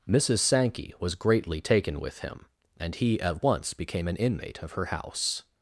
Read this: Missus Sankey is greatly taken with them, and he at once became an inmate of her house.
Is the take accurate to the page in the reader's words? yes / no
no